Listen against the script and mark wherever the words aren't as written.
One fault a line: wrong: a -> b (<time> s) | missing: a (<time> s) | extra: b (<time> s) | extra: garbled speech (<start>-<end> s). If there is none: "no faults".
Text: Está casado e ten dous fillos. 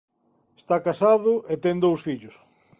no faults